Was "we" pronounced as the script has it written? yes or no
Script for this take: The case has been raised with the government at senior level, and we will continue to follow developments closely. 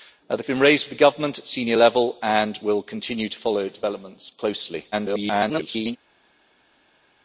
no